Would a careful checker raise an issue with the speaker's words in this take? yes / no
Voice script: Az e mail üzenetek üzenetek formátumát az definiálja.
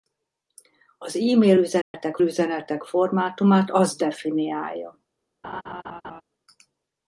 no